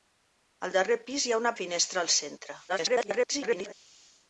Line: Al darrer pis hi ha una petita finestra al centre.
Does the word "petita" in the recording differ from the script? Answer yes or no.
yes